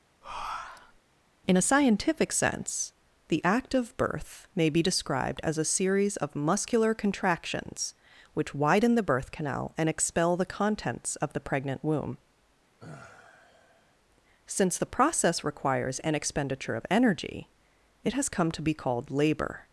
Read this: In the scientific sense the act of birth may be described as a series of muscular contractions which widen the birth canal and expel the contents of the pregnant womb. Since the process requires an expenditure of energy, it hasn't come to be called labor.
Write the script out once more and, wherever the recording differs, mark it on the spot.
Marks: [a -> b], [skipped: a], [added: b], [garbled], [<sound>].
[breath] In [the -> a] scientific sense the act of birth may be described as a series of muscular contractions which widen the birth canal and expel the contents of the pregnant womb. [sigh] Since the process requires an expenditure of energy, it [hasn't -> has] come to be called labor.